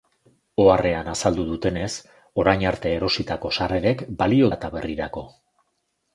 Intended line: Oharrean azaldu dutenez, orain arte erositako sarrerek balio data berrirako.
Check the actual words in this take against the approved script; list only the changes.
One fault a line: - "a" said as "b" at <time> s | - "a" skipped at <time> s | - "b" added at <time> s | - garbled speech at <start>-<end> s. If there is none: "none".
none